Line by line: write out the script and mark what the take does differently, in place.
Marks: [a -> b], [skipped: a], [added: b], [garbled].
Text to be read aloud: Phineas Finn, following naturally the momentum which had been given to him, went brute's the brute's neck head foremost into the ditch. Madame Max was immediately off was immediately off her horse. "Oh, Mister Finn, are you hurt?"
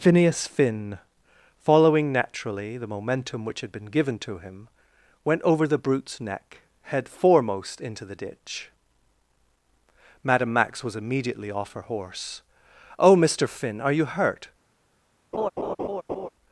Phineas Finn, following naturally the momentum which had been given to him, went [brute's -> over] the brute's neck head foremost into the ditch. Madame Max was immediately off [skipped: was immediately off] her horse. "Oh, Mister Finn, are you hurt?"